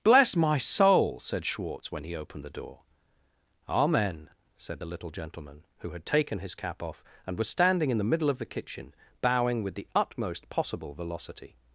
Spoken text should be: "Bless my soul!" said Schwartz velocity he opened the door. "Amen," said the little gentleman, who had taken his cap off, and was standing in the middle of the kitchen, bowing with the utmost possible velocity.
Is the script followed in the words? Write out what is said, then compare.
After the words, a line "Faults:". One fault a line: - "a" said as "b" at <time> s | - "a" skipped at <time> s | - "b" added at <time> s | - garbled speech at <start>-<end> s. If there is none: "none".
"Bless my soul!" said Schwartz when he opened the door. "Amen," said the little gentleman, who had taken his cap off, and was standing in the middle of the kitchen, bowing with the utmost possible velocity.
Faults:
- "velocity" said as "when" at 1.9 s